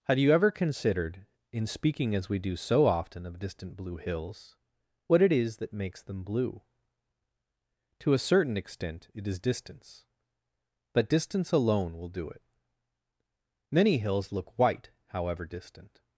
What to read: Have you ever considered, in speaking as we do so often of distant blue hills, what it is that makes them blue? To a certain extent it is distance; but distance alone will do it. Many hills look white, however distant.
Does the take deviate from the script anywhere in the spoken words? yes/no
no